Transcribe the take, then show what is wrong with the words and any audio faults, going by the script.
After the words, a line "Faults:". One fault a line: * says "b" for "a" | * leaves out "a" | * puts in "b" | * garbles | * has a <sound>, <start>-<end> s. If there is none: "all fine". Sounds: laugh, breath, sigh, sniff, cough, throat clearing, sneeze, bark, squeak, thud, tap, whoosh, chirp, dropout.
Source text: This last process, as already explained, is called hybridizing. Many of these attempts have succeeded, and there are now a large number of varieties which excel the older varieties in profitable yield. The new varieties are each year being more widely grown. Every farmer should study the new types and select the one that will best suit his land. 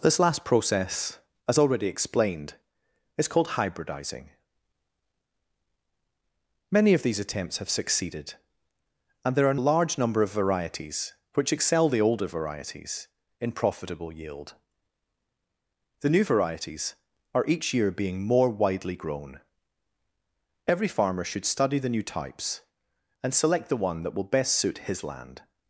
This last process, as already explained, is called hybridizing. Many of these attempts have succeeded, and there are a large number of varieties which excel the older varieties in profitable yield. The new varieties are each year being more widely grown. Every farmer should study the new types and select the one that will best suit his land.
Faults:
* leaves out "now"